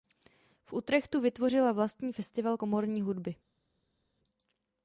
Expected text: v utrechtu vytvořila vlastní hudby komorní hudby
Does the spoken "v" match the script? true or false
true